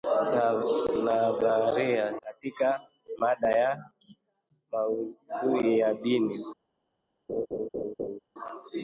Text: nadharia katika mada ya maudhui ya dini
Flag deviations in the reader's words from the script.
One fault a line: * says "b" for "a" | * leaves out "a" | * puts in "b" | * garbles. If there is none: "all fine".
all fine